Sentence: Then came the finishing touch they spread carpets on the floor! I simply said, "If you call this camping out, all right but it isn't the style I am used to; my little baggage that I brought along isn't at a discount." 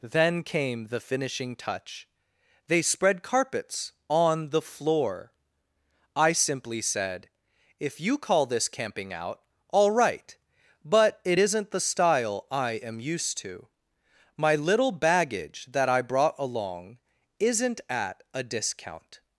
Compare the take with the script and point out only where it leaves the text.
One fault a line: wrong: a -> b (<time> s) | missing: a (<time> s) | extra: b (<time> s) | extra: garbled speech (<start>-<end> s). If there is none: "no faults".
no faults